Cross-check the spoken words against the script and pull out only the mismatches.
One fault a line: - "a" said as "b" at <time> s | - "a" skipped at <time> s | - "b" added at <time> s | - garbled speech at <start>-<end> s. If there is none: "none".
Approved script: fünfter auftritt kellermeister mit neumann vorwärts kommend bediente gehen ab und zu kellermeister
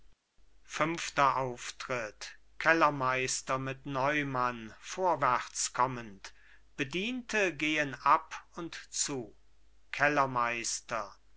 none